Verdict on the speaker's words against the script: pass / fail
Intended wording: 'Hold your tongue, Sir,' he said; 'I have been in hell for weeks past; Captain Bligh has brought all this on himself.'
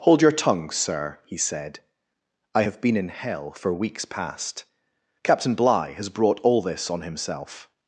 pass